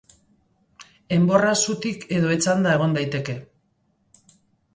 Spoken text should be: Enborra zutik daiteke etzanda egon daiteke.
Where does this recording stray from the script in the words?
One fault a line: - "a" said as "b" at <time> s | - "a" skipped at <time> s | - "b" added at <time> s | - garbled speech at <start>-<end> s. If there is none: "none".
- "daiteke" said as "edo" at 2.2 s